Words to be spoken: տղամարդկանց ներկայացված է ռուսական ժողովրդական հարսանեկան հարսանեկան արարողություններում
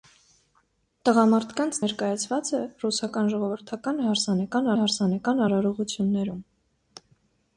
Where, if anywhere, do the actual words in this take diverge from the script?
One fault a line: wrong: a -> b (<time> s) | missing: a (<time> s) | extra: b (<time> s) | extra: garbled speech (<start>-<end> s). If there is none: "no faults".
no faults